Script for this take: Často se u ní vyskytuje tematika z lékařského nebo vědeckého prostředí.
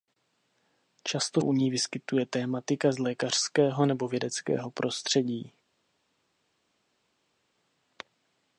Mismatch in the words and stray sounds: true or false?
true